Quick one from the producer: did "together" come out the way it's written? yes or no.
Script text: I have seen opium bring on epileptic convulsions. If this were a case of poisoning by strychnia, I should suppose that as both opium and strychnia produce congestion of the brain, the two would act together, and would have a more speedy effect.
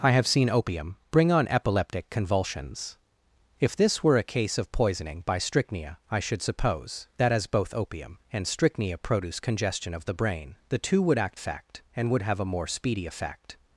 no